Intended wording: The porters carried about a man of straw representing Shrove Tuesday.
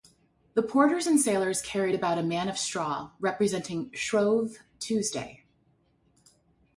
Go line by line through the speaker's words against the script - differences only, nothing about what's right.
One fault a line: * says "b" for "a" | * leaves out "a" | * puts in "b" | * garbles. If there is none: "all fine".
* puts in "and sailors"